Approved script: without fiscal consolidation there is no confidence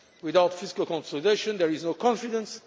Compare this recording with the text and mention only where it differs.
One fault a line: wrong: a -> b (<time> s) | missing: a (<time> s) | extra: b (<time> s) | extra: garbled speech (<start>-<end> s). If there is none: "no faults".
no faults